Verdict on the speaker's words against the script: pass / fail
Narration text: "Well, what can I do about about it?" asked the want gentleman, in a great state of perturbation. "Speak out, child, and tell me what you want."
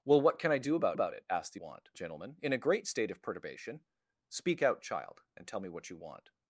pass